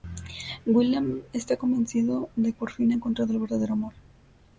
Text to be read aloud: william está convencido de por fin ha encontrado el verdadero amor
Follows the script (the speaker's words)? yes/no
yes